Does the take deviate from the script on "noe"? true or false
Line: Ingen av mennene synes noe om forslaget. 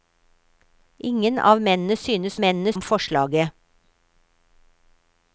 true